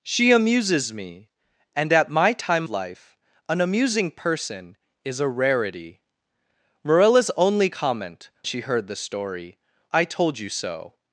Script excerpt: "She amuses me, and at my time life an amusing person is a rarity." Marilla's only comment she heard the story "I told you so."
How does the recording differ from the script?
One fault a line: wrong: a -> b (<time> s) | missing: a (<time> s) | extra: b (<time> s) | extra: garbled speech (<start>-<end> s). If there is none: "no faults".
no faults